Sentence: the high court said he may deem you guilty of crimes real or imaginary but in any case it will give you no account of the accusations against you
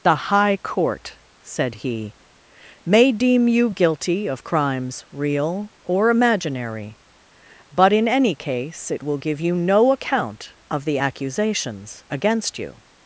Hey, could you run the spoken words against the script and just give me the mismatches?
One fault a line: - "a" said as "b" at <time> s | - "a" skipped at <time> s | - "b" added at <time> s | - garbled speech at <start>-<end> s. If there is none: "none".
none